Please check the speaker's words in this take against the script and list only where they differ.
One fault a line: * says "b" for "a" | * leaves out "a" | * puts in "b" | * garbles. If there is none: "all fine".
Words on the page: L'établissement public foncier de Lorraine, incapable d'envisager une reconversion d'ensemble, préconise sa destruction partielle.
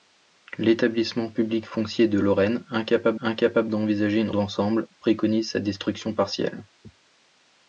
* puts in "incapable"
* leaves out "reconversion"